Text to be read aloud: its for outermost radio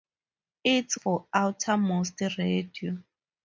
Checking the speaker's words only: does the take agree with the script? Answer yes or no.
yes